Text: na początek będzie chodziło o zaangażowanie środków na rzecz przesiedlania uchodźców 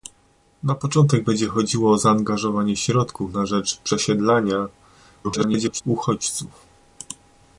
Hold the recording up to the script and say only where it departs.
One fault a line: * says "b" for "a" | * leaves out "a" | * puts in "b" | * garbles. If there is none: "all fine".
* garbles